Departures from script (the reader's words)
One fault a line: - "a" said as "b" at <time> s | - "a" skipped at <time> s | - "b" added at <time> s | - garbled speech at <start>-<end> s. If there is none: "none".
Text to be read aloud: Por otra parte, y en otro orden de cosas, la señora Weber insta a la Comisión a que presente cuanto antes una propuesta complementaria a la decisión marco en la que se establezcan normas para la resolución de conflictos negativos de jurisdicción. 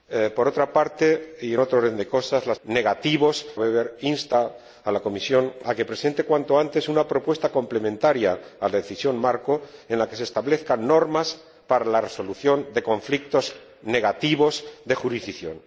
- "señora" said as "negativos" at 2.6 s